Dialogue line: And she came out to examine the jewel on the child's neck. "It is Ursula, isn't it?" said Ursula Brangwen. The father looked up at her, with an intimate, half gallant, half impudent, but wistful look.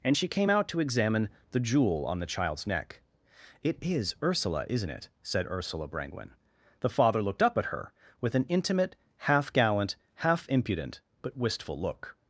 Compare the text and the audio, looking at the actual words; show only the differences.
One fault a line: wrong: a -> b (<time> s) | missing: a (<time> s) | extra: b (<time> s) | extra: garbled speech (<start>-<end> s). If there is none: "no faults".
no faults